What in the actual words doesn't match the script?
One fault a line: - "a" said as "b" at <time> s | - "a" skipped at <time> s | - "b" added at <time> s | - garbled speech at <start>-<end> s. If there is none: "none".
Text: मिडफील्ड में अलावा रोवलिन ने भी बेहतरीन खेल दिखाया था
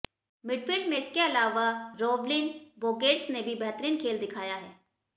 - "इसके" added at 0.9 s
- "बोर्गेस" added at 2.8 s
- "था" said as "है" at 4.5 s